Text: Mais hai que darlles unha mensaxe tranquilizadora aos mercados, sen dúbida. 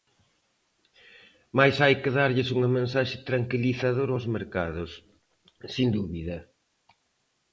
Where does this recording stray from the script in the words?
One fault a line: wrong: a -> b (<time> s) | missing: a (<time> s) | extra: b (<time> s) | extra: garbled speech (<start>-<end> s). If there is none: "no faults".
no faults